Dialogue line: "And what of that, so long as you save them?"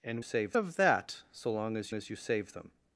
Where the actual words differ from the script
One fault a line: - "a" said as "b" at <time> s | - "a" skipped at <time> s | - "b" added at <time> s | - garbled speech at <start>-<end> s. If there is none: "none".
- "what" said as "save" at 0.2 s
- "as" added at 1.9 s